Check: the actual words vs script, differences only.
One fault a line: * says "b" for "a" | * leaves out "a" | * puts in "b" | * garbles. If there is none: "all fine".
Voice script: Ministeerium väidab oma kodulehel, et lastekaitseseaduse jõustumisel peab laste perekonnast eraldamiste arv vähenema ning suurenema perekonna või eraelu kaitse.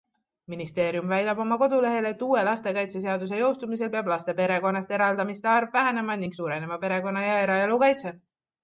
* puts in "uue"
* says "ja" for "või"